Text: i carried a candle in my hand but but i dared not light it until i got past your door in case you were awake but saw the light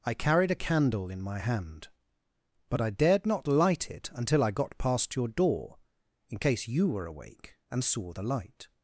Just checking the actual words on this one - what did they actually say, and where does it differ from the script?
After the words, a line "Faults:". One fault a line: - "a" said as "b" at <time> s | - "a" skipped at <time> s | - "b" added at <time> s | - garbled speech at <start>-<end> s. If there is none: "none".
i carried a candle in my hand but i dared not light it until i got past your door in case you were awake and saw the light
Faults:
- "but" skipped at 2.8 s
- "but" said as "and" at 7.7 s